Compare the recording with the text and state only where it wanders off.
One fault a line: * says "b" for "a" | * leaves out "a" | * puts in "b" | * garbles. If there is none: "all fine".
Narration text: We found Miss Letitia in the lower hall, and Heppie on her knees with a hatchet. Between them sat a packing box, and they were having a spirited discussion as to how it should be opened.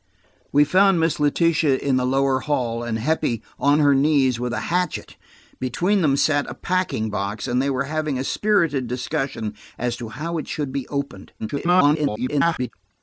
* garbles